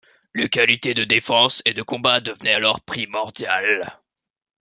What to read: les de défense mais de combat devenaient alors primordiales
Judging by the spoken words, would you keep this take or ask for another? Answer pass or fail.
fail